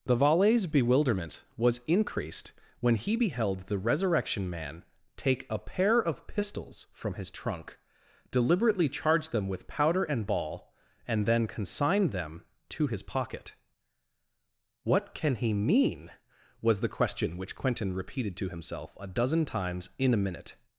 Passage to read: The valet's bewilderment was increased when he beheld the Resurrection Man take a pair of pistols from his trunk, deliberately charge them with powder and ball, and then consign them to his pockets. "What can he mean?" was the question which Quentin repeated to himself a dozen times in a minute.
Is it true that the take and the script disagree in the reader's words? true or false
true